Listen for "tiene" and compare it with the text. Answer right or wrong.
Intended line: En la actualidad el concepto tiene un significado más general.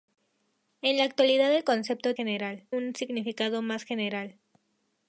wrong